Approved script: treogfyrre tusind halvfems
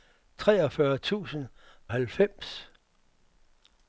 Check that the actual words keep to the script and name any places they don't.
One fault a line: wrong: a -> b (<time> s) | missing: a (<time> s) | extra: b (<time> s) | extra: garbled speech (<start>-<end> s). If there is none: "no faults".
no faults